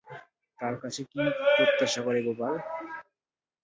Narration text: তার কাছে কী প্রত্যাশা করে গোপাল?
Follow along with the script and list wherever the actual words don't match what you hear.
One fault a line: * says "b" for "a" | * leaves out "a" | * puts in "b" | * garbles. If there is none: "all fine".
all fine